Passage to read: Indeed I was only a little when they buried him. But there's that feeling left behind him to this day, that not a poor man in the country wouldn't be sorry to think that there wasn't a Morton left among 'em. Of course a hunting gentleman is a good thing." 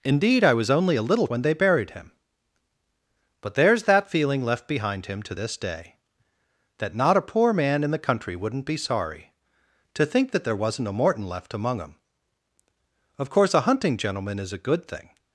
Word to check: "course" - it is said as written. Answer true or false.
true